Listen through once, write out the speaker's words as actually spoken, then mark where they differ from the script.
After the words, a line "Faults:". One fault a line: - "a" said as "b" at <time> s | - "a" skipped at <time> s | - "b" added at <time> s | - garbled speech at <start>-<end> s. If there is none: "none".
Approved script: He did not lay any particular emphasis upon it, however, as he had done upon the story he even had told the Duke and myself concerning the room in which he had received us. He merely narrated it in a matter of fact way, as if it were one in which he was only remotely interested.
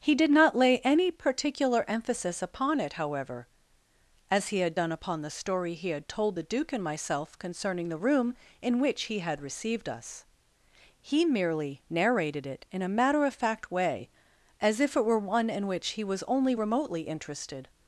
He did not lay any particular emphasis upon it, however, as he had done upon the story he had told the Duke and myself concerning the room in which he had received us. He merely narrated it in a matter of fact way, as if it were one in which he was only remotely interested.
Faults:
- "even" skipped at 5.9 s